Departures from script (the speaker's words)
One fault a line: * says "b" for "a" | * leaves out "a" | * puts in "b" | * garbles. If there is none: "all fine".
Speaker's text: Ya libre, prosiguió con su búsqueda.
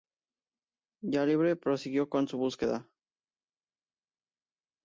all fine